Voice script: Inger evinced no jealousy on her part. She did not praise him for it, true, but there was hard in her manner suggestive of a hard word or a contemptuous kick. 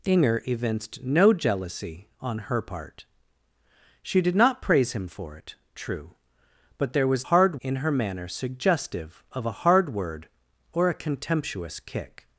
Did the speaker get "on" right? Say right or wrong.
right